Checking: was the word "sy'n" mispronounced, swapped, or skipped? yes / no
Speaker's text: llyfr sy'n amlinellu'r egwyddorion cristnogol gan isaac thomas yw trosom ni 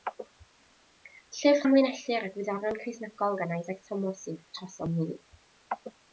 yes